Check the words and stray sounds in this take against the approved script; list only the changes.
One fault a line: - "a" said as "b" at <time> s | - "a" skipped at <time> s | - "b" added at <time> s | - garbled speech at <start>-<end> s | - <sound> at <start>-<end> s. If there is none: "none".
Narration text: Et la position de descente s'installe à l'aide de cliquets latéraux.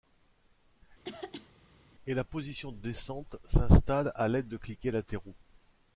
- throat clearing at 1.0-1.5 s